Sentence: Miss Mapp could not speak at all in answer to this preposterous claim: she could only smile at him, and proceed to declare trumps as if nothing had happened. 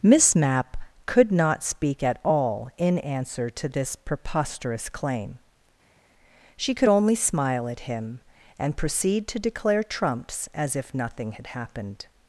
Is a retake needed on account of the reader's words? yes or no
no